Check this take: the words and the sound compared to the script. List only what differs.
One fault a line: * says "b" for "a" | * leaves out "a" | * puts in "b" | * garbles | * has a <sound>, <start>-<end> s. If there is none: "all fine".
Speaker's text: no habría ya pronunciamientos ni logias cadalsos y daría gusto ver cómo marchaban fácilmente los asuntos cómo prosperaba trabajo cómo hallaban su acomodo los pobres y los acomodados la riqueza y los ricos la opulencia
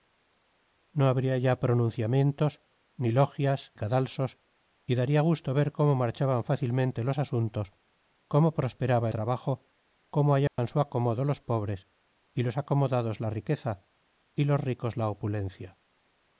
* has a dropout, 10.5-10.6 s